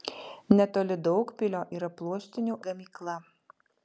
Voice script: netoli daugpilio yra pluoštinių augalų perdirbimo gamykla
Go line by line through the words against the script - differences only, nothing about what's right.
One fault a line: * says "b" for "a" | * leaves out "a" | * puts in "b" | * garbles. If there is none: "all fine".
* leaves out "augalų perdirbimo"